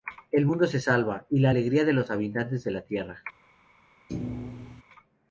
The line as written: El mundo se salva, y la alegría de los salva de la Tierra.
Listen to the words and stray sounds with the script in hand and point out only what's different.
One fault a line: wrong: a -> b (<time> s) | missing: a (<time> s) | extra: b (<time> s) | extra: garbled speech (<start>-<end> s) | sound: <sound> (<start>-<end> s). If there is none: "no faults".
wrong: salva -> habitantes (2.1 s)
sound: thud (4.1-4.8 s)